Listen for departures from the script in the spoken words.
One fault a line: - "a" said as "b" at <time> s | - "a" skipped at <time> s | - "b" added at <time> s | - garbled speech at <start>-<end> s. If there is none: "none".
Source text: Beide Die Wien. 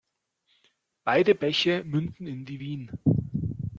- "Bäche münden in" added at 1.4 s